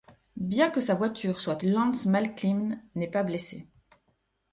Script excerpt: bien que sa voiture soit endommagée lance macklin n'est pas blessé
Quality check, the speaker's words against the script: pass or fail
fail